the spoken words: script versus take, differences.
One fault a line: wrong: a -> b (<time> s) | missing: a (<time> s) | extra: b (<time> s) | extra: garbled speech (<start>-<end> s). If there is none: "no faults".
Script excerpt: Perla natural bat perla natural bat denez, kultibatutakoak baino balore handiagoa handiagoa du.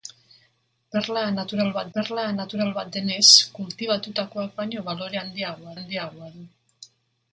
no faults